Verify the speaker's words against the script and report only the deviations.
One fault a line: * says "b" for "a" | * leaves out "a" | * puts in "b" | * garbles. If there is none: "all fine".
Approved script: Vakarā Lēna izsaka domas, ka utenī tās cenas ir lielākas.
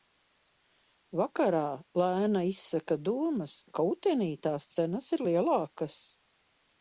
all fine